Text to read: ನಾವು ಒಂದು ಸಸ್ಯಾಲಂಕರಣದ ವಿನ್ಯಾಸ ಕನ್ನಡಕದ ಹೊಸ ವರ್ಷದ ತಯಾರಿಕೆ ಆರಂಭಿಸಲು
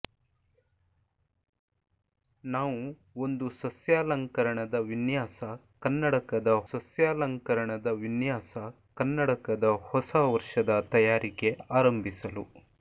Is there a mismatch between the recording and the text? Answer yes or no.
yes